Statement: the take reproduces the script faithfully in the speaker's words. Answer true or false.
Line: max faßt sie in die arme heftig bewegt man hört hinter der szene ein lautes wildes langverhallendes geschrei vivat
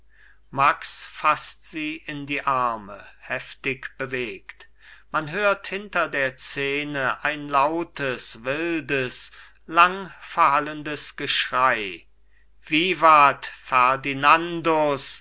true